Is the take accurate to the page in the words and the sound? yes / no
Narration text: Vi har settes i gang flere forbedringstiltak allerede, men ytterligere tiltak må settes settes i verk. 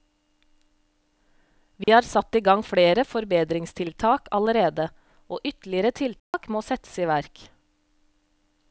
no